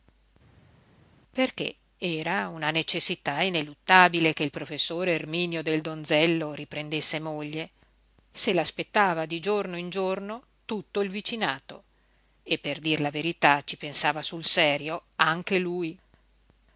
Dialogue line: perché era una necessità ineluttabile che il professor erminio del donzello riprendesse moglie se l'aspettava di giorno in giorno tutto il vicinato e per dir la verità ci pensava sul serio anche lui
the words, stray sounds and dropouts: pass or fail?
pass